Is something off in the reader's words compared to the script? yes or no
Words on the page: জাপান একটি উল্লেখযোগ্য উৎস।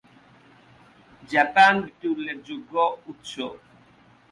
no